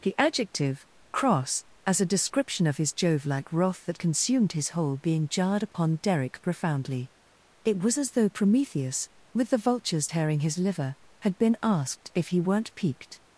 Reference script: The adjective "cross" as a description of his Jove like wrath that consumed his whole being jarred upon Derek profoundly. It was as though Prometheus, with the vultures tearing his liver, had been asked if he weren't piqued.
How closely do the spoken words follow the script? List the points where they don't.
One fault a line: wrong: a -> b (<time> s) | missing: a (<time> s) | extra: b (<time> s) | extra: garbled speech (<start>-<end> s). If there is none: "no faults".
no faults